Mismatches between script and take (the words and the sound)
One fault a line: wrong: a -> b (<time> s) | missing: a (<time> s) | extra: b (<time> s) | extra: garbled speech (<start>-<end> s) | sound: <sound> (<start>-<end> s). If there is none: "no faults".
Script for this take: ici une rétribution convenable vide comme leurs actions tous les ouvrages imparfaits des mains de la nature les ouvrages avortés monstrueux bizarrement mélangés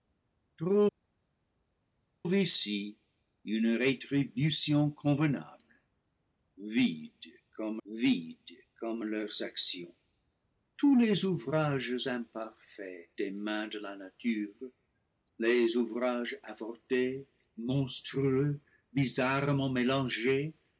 extra: vide comme (7.9 s)